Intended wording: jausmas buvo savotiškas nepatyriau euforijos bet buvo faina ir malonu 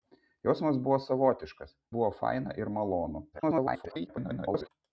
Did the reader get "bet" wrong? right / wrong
wrong